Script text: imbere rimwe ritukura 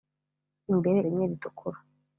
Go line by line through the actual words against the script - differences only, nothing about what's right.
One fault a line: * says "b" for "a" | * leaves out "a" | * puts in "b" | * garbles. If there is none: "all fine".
all fine